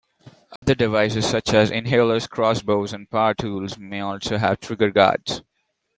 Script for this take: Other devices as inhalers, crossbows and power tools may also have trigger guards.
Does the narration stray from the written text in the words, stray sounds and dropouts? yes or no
yes